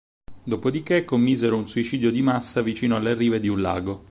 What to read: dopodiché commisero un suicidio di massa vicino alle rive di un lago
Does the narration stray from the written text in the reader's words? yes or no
no